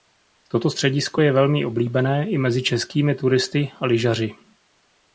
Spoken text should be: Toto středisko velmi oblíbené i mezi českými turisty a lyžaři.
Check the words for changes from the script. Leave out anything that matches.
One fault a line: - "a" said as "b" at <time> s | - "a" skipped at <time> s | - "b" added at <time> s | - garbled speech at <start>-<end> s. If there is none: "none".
- "je" added at 1.2 s